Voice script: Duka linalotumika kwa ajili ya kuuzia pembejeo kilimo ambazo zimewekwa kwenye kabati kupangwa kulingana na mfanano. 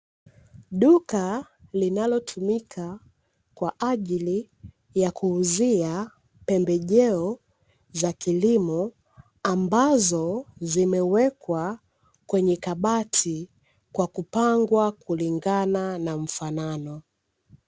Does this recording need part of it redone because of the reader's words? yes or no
yes